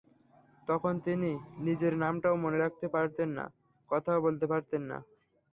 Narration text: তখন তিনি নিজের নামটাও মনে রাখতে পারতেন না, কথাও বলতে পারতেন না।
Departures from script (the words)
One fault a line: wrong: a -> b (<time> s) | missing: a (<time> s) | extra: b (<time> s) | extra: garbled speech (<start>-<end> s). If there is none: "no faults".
no faults